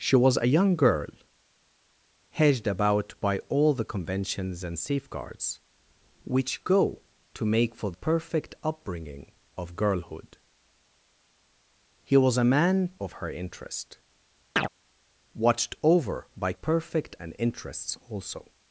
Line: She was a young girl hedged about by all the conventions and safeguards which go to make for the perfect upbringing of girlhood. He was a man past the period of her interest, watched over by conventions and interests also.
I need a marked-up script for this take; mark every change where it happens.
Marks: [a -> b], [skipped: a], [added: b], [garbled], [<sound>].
She was a young girl hedged about by all the conventions and safeguards which go to make for [skipped: the] perfect upbringing of girlhood. He was a man [skipped: past the period] of her interest, [chirp] watched over by [conventions -> perfect] and interests also.